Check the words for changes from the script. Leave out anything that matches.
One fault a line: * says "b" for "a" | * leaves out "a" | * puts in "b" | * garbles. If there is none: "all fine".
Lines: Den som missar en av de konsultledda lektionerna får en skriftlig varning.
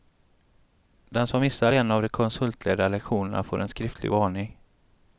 all fine